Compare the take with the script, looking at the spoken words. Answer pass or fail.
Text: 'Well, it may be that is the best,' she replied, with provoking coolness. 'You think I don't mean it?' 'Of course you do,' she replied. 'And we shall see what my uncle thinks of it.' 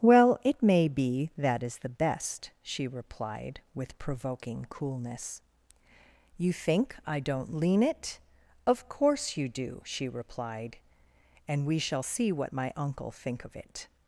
fail